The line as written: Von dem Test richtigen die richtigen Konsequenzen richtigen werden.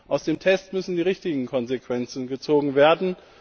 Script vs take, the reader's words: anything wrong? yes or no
yes